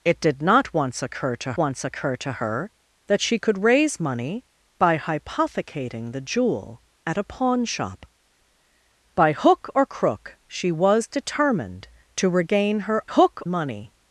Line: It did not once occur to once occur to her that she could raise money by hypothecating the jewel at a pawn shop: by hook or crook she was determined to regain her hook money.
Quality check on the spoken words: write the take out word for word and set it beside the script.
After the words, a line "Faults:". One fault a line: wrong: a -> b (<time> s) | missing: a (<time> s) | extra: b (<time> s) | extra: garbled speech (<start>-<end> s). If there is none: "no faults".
It did not once occur to once occur to her that she could raise money by hypothecating the jewel at a pawn shop: by hook or crook she was determined to regain her hook money.
Faults:
no faults